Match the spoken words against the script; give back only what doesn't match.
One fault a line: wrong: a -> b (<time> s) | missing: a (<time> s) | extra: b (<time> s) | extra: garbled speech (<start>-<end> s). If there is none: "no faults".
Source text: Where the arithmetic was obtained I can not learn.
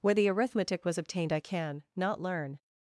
no faults